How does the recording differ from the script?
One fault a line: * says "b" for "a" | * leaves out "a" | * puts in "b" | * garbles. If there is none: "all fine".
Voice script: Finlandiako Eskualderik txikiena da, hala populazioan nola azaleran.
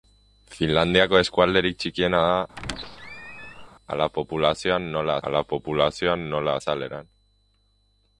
* puts in "hala populazioan nola"